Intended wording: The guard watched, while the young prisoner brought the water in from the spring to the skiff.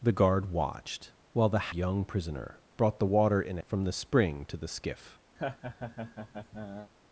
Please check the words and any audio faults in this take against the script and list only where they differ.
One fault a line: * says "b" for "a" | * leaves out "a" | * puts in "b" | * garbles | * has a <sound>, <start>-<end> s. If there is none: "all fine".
* has a laugh, 5.4-6.9 s